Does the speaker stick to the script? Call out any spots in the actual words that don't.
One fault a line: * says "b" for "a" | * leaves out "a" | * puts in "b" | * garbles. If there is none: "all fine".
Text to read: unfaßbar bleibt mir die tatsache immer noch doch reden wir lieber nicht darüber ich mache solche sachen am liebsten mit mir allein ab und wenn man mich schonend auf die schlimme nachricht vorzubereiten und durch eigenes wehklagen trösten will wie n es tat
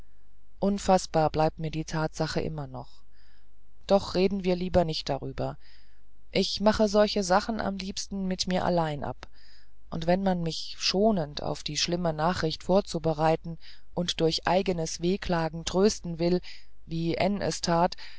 all fine